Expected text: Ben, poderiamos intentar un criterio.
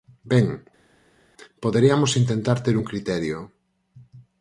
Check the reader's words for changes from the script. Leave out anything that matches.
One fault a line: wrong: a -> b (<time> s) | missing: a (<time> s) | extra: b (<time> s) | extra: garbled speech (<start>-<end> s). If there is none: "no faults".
extra: ter (2.6 s)